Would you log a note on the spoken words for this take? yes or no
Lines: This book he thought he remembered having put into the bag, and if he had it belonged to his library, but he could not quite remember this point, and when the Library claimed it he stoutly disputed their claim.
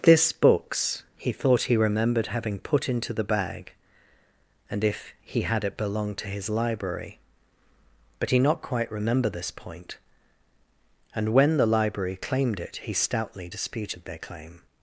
yes